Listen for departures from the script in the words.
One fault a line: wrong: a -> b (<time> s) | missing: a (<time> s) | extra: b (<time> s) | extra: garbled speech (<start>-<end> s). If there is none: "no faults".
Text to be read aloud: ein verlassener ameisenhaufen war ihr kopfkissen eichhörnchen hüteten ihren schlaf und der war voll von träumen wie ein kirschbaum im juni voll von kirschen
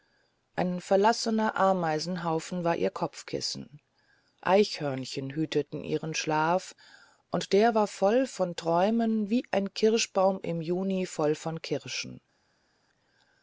no faults